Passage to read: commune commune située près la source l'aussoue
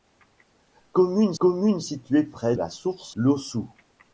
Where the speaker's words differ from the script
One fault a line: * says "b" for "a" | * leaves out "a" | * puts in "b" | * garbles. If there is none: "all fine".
all fine